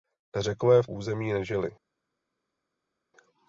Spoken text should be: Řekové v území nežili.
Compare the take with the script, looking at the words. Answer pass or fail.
pass